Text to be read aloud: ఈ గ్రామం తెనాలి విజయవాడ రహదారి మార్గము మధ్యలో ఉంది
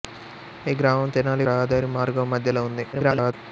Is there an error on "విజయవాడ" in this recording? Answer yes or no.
yes